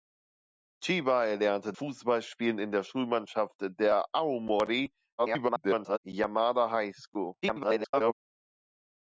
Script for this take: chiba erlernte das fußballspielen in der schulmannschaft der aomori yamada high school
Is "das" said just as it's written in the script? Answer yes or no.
no